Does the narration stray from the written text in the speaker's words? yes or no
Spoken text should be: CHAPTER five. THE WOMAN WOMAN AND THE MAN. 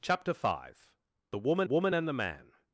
no